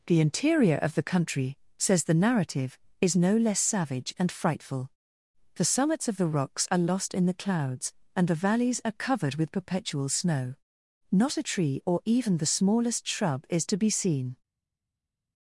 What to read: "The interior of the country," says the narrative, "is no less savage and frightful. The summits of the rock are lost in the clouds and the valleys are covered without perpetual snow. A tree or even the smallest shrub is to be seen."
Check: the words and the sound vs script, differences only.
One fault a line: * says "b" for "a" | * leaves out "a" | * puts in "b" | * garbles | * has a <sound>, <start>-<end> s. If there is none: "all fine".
* says "rocks" for "rock"
* says "with" for "without"
* puts in "Not"